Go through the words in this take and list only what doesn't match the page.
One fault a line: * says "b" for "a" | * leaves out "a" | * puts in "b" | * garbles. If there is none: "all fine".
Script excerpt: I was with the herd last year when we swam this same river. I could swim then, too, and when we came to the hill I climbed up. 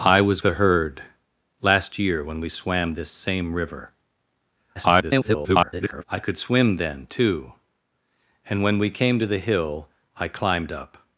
* leaves out "with"
* garbles